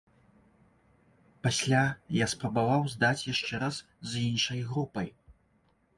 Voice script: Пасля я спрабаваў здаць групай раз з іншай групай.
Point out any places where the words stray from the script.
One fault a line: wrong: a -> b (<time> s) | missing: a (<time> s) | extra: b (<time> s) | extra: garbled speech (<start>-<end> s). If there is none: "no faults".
wrong: групай -> яшчэ (3.3 s)